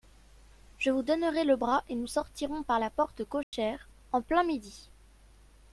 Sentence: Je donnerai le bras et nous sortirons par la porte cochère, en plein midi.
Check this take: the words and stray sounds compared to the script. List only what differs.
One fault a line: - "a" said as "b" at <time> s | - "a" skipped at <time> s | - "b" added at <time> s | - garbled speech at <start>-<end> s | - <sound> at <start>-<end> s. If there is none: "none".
- "vous" added at 0.9 s
- dropout at 3.4-3.5 s